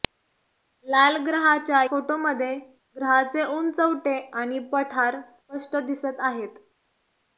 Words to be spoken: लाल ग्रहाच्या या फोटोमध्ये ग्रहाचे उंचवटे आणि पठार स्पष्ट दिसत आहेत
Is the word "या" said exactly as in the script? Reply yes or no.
no